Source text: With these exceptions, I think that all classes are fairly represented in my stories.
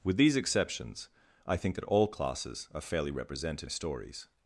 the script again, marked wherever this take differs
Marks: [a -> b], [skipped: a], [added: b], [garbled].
With these exceptions, I think that all classes are fairly represented [skipped: in my] stories.